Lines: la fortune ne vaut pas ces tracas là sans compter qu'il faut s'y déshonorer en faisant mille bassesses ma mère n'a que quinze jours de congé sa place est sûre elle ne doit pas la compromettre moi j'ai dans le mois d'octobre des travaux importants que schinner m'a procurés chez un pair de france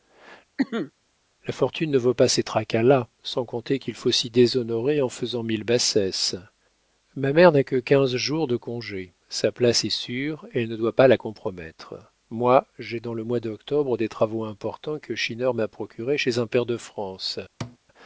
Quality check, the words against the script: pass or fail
pass